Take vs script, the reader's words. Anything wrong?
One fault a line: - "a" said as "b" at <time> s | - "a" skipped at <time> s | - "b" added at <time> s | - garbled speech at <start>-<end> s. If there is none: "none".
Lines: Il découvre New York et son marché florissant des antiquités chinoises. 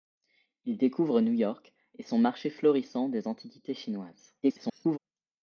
- garbled speech at 4.4-5.0 s